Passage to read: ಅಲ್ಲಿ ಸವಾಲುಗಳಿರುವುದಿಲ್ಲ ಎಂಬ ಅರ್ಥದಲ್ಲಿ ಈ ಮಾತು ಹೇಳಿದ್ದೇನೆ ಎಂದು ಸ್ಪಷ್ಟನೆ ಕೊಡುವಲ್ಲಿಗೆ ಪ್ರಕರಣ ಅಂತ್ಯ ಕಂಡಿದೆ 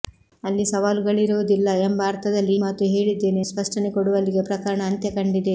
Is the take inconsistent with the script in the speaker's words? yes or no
yes